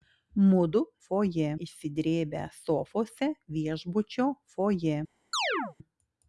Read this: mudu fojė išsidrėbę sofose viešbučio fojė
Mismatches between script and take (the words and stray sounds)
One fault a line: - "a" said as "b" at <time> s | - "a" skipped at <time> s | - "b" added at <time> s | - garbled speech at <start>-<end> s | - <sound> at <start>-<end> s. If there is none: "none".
- chirp at 5.3-5.8 s